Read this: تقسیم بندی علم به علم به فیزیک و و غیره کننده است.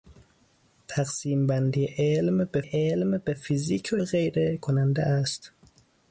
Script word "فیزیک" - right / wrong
right